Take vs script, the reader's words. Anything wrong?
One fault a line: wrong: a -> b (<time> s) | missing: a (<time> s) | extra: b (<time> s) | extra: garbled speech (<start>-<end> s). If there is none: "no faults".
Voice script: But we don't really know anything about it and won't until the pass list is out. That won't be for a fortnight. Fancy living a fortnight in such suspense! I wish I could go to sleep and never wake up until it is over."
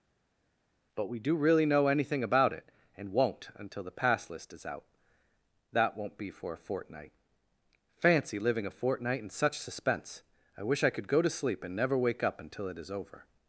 wrong: don't -> do (1.2 s)